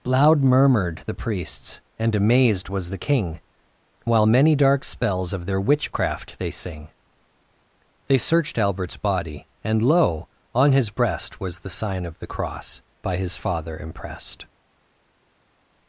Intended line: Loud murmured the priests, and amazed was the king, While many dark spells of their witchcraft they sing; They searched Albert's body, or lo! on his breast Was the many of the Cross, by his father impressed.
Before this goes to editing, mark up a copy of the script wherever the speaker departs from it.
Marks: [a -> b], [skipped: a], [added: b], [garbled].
Loud murmured the priests, and amazed was the king, While many dark spells of their witchcraft they sing; They searched Albert's body, [or -> and] lo! on his breast Was the [many -> sign] of the Cross, by his father impressed.